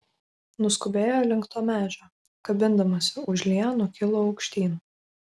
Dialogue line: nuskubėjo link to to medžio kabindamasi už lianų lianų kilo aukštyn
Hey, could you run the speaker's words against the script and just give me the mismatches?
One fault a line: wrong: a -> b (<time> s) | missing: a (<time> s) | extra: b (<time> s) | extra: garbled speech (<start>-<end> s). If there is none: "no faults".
missing: to (1.6 s)
missing: lianų (3.9 s)